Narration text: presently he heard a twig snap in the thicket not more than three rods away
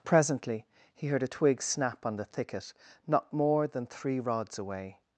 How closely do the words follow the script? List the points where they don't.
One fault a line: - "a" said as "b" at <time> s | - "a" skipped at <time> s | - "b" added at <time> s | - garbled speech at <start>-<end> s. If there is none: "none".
- "in" said as "on" at 2.0 s